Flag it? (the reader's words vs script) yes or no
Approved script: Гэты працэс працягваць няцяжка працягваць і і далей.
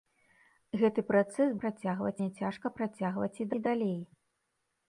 no